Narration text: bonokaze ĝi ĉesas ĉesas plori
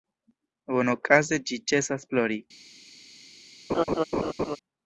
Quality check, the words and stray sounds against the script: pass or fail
fail